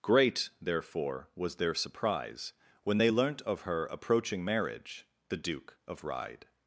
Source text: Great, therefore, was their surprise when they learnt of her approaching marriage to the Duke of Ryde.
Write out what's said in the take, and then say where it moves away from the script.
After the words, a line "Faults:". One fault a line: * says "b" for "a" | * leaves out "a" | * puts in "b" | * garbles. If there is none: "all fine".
Great, therefore, was their surprise when they learnt of her approaching marriage the Duke of Ryde.
Faults:
* leaves out "to"